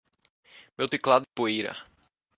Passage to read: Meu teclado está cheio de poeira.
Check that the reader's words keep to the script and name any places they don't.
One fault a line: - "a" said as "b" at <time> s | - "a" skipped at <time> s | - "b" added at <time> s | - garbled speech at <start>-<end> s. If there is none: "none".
- "está cheio de" skipped at 1.3 s